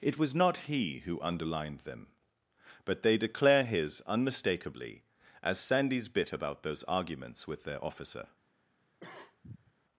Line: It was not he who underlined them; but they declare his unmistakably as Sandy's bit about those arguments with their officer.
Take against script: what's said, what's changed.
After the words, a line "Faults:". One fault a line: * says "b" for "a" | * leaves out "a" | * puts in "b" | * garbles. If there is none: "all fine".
It was not he who underlined them; but they declare his unmistakably as Sandy's bit about those arguments with their officer.
Faults:
all fine